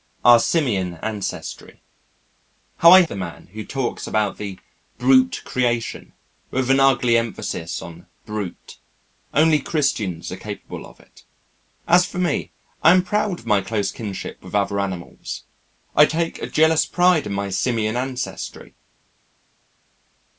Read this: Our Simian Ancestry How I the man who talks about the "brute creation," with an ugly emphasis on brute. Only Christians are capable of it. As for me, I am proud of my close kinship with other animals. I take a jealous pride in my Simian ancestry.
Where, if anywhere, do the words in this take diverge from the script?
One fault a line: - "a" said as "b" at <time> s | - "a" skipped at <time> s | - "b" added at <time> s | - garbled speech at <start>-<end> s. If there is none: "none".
none